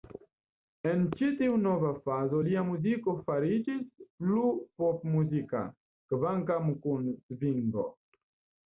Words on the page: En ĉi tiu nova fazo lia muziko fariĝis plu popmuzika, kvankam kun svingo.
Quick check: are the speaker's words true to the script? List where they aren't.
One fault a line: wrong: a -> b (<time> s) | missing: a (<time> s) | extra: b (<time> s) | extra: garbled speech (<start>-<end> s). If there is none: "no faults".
no faults